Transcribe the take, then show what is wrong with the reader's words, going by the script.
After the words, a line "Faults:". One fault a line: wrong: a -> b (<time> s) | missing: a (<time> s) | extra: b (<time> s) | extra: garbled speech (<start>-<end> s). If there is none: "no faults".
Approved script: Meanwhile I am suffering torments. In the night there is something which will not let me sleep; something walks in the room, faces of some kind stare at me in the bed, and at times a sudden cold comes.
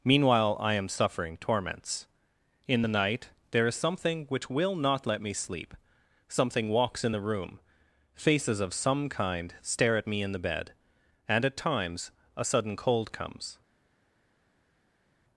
Meanwhile I am suffering torments. In the night there is something which will not let me sleep; something walks in the room, faces of some kind stare at me in the bed, and at times a sudden cold comes.
Faults:
no faults